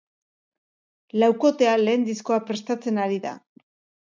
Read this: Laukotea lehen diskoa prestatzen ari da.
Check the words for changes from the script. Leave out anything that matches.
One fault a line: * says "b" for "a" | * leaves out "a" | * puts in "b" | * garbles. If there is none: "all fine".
all fine